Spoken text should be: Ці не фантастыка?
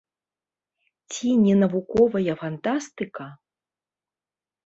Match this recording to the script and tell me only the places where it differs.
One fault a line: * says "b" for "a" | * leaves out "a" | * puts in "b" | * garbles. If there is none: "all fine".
* puts in "навуковая"